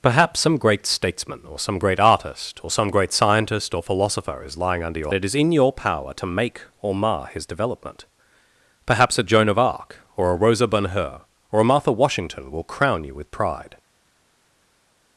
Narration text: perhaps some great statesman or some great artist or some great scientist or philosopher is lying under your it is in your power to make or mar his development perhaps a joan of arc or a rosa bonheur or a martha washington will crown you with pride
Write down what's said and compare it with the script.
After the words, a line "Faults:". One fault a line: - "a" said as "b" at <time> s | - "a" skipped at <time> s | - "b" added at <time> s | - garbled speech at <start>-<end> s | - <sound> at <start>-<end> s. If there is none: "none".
perhaps some great statesman or some great artist or some great scientist or philosopher is lying under your it is in your power to make or mar his development perhaps a joan of arc or a rosa bonheur or a martha washington will crown you with pride
Faults:
none